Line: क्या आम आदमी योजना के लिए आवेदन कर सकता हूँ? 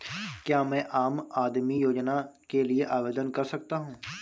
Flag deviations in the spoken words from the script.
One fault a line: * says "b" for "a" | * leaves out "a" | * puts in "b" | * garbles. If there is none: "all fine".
* puts in "मैं"